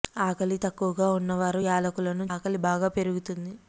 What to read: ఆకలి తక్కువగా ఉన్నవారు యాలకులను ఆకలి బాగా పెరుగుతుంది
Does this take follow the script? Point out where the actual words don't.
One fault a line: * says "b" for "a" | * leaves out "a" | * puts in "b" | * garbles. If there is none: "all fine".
all fine